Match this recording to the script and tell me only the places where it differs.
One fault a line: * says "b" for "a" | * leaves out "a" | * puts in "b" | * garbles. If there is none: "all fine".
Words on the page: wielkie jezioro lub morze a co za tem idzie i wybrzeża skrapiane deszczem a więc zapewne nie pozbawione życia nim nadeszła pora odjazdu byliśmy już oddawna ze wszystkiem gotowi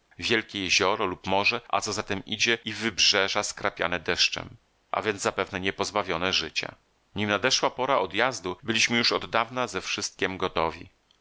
all fine